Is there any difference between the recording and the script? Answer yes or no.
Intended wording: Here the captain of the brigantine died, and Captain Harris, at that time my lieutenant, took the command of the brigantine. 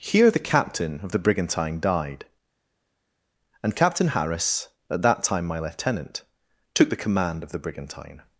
no